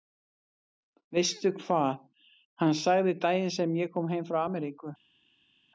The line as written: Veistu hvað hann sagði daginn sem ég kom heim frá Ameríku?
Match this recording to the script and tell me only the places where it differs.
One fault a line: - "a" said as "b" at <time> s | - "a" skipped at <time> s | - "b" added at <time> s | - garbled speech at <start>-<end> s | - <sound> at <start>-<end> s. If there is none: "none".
none